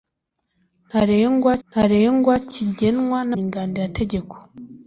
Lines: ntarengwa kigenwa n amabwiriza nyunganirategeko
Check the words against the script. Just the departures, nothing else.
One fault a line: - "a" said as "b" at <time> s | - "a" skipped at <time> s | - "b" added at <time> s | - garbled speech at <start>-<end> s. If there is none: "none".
- "ntarengwa" added at 1.7 s
- "amabwiriza" skipped at 3.3 s